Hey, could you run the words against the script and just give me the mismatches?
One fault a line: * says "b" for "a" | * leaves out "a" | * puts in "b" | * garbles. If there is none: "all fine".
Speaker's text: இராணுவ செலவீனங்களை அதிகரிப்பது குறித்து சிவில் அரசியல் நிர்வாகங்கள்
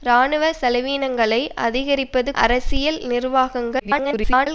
* leaves out "குறித்து சிவில்"
* garbles